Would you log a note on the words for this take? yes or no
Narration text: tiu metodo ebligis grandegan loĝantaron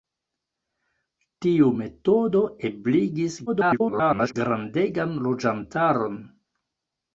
yes